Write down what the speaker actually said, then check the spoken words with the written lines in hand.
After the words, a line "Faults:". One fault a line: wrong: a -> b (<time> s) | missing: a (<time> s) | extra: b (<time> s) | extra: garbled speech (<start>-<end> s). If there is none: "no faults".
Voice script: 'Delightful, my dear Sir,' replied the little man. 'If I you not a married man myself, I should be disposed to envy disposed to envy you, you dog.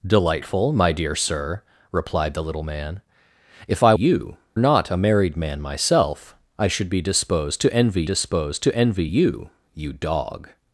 'Delightful, my dear Sir,' replied the little man. 'If I you not a married man myself, I should be disposed to envy disposed to envy you, you dog.
Faults:
no faults